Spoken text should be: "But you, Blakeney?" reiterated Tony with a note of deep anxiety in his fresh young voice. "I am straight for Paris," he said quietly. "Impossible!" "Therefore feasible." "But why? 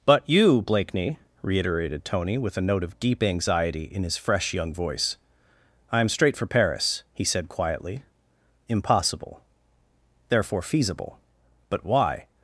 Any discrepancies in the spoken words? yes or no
no